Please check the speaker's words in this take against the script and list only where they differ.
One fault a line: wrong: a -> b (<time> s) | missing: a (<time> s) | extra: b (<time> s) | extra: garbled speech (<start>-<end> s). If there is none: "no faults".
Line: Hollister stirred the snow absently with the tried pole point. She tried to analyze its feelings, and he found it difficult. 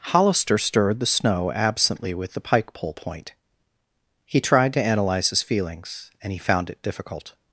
wrong: tried -> pike (2.4 s)
wrong: She -> He (4.2 s)
wrong: its -> his (5.3 s)